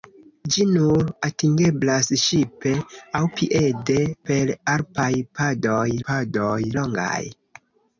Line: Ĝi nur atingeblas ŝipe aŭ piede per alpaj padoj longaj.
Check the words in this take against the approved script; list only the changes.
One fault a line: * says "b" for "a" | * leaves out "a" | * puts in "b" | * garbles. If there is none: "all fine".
* puts in "padoj"